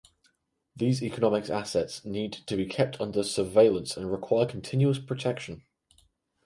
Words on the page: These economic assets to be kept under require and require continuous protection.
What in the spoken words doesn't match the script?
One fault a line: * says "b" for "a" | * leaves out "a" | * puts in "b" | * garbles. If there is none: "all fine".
* puts in "need"
* says "surveillance" for "require"